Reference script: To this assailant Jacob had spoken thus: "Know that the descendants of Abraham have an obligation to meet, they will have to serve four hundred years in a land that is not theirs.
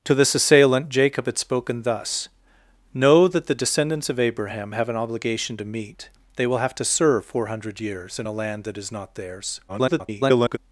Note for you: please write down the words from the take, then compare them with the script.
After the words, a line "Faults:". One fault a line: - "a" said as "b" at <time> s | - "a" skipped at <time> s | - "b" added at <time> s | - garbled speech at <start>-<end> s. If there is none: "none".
To this assailant Jacob had spoken thus: "Know that the descendants of Abraham have an obligation to meet, they will have to serve four hundred years in a land that is not theirs. [garbled]
Faults:
- garbled speech at 9.7-10.6 s